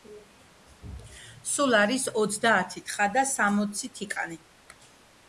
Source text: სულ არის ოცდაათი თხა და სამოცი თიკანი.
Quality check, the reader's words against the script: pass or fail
pass